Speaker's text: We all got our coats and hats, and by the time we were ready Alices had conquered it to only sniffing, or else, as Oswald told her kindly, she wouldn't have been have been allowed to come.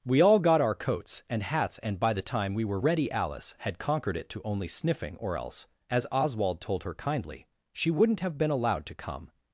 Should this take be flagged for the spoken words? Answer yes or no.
yes